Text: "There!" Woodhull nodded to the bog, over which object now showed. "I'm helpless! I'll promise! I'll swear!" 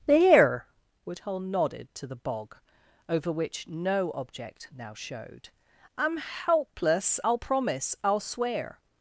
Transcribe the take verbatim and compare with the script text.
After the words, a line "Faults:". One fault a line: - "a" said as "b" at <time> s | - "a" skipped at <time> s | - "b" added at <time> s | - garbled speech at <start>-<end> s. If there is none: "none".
"There!" Woodhull nodded to the bog, over which no object now showed. "I'm helpless! I'll promise! I'll swear!"
Faults:
- "no" added at 3.7 s